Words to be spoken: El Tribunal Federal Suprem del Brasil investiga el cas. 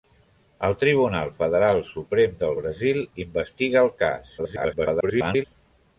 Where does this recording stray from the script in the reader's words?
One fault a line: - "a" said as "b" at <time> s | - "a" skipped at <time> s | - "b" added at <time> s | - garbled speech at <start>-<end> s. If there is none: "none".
- garbled speech at 4.4-5.4 s